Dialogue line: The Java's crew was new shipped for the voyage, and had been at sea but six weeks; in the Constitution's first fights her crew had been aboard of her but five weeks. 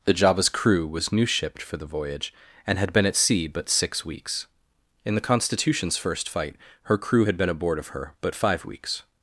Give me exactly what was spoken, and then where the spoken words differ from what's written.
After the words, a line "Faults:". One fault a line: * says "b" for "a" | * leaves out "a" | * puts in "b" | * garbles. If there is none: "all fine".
The Java's crew was new shipped for the voyage, and had been at sea but six weeks; in the Constitution's first fight her crew had been aboard of her but five weeks.
Faults:
* says "fight" for "fights"